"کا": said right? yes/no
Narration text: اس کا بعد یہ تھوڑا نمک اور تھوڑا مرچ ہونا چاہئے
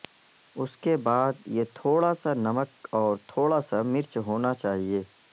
no